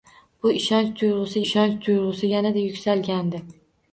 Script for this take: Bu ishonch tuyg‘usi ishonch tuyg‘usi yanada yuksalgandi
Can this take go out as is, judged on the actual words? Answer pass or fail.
pass